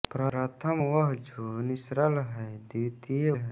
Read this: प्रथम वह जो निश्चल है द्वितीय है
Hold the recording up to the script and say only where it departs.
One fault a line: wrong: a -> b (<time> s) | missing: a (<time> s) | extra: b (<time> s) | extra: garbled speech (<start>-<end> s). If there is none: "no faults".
no faults